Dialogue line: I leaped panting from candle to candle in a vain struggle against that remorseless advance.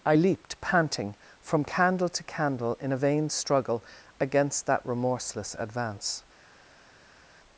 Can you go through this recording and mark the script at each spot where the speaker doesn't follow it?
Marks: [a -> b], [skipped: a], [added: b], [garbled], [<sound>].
I leaped panting from candle to candle in a vain struggle against that remorseless advance.